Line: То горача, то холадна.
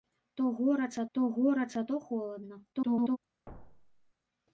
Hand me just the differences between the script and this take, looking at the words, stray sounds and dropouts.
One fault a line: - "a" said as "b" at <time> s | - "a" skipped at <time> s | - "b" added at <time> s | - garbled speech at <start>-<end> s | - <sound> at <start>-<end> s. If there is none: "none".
- "горача то" added at 1.3 s
- garbled speech at 2.7-3.2 s
- thud at 3.5-4.1 s